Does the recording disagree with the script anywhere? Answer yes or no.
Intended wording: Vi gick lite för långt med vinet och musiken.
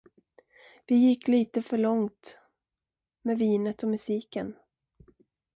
no